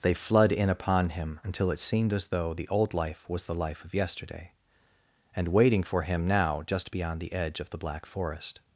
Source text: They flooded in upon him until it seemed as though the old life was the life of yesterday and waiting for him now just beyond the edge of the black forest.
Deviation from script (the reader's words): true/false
true